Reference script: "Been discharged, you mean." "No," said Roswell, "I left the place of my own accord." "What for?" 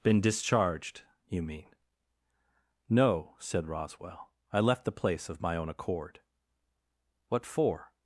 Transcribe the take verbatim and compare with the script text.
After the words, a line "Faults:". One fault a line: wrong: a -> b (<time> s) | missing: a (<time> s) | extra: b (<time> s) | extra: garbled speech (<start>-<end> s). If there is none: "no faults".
"Been discharged, you mean." "No," said Roswell, "I left the place of my own accord." "What for?"
Faults:
no faults